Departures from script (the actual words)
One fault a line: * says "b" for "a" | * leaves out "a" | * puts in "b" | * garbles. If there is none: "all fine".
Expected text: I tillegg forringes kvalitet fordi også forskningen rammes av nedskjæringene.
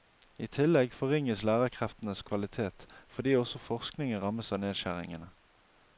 * puts in "lærerkreftenes"